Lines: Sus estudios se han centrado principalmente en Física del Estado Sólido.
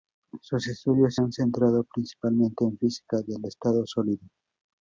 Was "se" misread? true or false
true